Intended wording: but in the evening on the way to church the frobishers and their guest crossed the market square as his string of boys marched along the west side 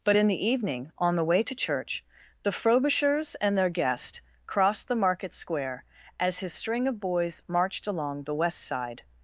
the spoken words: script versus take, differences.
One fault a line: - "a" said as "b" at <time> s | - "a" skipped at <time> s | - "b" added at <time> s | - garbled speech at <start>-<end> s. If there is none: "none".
none